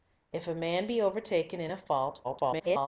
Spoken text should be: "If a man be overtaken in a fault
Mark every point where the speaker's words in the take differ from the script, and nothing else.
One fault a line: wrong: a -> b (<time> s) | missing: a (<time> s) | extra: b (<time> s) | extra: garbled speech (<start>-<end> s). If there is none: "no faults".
extra: garbled speech (2.2-2.9 s)